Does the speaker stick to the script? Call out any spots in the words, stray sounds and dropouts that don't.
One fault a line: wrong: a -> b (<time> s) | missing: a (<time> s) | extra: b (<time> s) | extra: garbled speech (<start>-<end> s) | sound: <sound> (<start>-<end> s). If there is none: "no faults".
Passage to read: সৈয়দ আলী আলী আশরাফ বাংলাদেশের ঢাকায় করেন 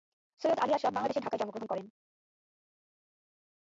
missing: আলী (0.7 s)
extra: জন্মগ্রহণ (1.4 s)